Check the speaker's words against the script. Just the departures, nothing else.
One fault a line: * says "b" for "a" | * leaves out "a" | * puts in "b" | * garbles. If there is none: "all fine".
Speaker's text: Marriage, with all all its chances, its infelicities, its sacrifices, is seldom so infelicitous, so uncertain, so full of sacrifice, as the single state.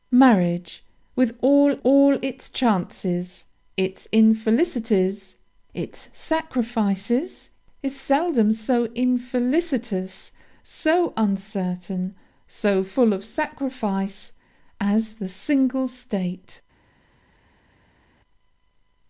all fine